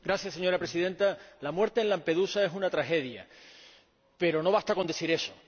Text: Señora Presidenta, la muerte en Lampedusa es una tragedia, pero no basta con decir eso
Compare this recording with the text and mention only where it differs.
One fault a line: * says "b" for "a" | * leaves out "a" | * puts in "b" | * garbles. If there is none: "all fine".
all fine